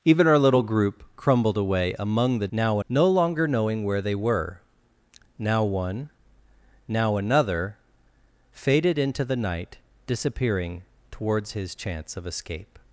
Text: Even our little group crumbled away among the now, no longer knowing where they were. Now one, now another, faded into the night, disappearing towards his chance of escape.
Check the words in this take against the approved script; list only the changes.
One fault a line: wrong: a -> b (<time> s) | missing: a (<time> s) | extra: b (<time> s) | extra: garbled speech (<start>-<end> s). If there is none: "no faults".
no faults